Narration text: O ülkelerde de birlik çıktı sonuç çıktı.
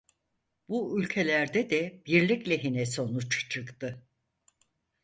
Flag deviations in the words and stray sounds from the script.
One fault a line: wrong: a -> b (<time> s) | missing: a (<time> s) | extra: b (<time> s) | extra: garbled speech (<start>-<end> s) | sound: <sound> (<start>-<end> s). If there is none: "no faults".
wrong: O -> Bu (0.7 s)
wrong: çıktı -> lehine (2.5 s)